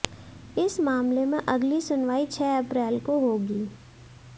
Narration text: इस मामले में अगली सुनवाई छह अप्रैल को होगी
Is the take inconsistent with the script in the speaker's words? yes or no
no